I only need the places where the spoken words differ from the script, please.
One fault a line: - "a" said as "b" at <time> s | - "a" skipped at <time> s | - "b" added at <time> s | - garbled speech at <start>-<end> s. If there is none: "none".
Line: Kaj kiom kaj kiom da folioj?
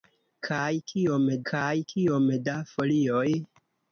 none